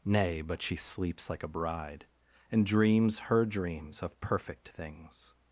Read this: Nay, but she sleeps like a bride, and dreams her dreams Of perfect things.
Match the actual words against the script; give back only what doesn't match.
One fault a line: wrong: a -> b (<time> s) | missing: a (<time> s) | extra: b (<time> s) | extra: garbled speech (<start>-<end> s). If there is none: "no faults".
no faults